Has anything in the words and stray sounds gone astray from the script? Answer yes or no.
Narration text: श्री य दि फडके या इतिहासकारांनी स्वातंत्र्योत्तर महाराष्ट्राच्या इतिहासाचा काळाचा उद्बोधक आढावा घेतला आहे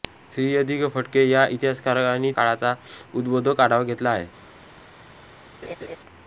yes